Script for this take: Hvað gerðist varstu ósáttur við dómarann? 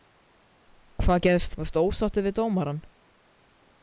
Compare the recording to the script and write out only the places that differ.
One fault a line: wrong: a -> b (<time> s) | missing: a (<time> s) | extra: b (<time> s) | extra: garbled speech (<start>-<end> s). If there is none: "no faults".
no faults